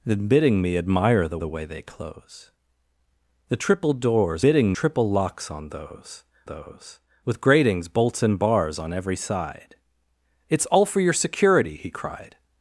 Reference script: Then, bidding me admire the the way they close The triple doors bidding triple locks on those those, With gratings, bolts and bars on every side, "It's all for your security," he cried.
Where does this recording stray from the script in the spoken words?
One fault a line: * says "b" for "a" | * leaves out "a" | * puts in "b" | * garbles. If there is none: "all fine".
all fine